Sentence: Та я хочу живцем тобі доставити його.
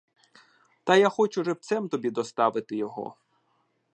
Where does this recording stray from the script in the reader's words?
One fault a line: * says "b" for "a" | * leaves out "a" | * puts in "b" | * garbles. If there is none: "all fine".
all fine